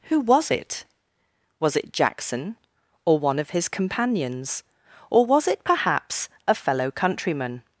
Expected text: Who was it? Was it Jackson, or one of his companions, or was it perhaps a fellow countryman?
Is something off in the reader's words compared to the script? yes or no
no